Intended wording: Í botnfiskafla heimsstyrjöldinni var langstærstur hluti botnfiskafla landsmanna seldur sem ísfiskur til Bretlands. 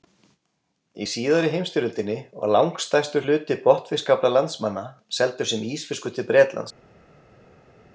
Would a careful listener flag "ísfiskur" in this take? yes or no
no